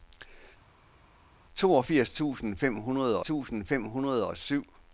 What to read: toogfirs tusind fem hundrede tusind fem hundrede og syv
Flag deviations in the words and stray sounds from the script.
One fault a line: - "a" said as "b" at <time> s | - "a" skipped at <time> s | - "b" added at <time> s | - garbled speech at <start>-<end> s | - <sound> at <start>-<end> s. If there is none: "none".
none